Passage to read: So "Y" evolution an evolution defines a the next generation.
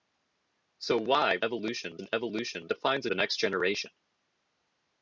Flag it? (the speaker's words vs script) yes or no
no